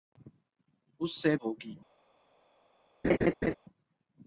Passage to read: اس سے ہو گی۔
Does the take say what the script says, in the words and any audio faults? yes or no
no